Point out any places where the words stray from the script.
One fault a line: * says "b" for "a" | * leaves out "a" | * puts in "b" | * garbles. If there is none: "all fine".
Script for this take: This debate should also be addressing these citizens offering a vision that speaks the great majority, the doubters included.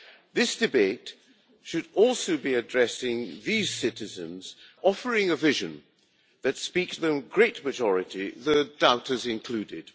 all fine